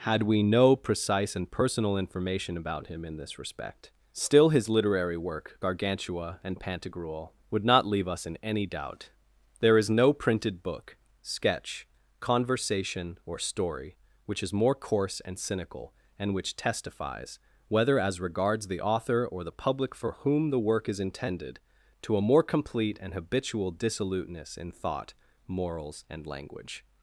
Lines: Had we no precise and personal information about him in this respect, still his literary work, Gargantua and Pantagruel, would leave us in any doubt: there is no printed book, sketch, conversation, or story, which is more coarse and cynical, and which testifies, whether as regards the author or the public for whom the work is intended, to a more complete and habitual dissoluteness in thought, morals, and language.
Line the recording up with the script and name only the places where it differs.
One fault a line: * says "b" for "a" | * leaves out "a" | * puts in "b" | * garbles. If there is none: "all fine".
* puts in "not"